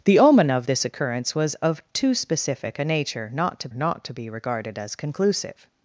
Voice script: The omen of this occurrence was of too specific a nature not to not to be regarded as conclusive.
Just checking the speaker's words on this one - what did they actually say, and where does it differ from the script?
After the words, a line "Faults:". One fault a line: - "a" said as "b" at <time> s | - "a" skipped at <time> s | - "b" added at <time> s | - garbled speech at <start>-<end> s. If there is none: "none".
The omen of this occurrence was of too specific a nature not to not to be regarded as conclusive.
Faults:
none